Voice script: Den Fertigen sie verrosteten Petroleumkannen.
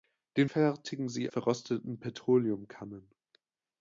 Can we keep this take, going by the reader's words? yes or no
yes